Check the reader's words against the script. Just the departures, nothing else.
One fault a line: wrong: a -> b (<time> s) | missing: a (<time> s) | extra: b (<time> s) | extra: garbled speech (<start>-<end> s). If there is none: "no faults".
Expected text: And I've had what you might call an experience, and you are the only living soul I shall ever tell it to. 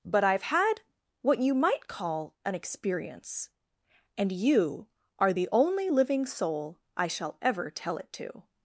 wrong: And -> But (0.0 s)